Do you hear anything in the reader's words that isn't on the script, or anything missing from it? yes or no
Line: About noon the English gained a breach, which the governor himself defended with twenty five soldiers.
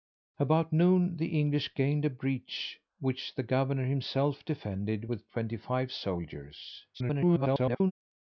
yes